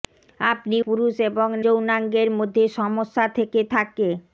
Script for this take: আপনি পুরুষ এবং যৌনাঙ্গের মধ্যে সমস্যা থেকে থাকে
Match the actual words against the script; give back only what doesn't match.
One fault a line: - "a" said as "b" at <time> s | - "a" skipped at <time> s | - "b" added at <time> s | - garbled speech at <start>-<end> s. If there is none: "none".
none